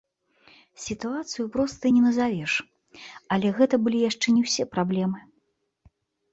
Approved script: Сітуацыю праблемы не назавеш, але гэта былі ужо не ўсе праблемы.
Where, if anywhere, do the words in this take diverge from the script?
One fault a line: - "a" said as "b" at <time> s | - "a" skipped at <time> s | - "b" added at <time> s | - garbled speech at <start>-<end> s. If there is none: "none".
- "праблемы" said as "простай" at 1.5 s
- "ужо" said as "яшчэ" at 4.1 s